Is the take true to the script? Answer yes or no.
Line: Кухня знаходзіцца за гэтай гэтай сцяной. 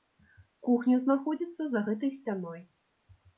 no